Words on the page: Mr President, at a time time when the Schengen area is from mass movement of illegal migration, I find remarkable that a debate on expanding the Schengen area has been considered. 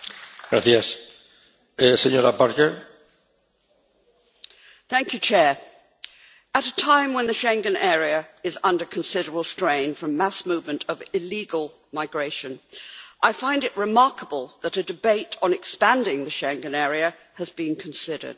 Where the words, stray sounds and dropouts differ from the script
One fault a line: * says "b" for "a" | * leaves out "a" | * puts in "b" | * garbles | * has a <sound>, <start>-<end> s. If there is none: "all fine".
* leaves out "time"
* puts in "under considerable strain"
* puts in "it"